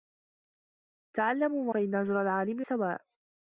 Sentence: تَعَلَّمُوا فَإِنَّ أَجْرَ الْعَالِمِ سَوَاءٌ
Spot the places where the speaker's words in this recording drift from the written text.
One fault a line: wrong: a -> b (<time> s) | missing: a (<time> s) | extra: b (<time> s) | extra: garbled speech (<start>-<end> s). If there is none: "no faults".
no faults